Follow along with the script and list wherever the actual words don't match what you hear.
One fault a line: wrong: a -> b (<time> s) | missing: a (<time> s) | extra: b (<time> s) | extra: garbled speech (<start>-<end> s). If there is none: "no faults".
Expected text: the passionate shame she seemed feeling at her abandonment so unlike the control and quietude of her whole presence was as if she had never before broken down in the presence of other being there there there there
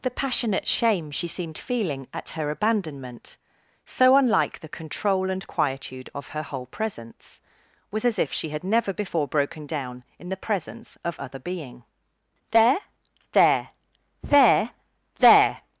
no faults